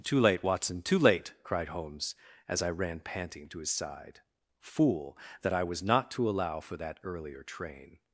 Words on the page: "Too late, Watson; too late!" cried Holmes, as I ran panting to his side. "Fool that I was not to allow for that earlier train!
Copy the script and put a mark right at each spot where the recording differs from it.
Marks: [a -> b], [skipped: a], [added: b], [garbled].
"Too late, Watson; too late!" cried Holmes, as I ran panting to his side. "Fool that I was not to allow for that earlier train!